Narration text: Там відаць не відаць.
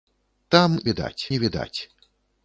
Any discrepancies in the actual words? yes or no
no